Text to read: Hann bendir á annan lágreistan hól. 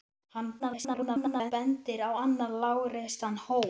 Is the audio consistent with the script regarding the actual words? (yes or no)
no